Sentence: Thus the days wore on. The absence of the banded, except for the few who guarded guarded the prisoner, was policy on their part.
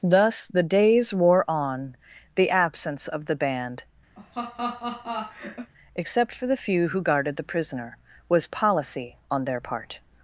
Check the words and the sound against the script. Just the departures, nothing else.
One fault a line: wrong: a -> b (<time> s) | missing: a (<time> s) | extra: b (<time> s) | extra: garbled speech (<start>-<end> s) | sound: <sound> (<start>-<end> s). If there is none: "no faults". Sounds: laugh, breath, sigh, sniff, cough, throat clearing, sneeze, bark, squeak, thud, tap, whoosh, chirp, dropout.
wrong: banded -> band (3.4 s)
sound: laugh (4.2-5.7 s)
missing: guarded (7.4 s)